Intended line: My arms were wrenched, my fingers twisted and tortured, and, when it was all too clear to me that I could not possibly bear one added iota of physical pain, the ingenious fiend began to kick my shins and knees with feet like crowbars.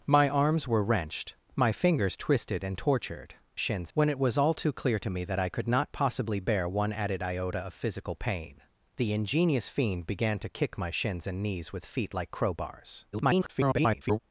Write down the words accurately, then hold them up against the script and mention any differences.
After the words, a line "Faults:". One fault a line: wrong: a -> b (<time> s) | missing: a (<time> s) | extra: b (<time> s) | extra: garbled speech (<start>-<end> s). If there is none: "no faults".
My arms were wrenched, my fingers twisted and tortured, shins, when it was all too clear to me that I could not possibly bear one added iota of physical pain, the ingenious fiend began to kick my shins and knees with feet like crowbars. [garbled]
Faults:
wrong: and -> shins (3.6 s)
extra: garbled speech (13.1-14.2 s)